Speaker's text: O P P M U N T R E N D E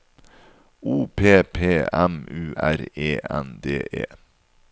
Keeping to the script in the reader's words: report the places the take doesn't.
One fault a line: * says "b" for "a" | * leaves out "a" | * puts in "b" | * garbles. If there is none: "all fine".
* leaves out "N T"